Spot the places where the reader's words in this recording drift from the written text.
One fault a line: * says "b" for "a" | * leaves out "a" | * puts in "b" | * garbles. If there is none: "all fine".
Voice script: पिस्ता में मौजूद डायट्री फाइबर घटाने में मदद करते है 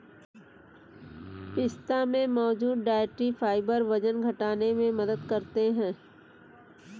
* puts in "वजन"